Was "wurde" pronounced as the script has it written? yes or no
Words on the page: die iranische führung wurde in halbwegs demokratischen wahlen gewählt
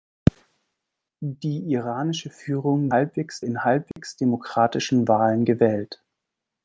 no